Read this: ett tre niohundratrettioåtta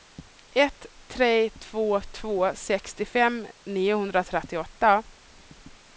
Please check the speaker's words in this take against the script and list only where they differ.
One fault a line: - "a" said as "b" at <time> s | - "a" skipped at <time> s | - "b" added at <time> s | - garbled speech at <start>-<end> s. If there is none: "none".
- "två två sextiofem" added at 1.5 s